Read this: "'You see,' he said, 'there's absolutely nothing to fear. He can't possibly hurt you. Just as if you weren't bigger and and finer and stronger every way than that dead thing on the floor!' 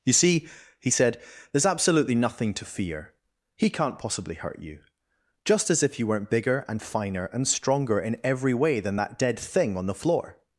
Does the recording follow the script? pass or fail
fail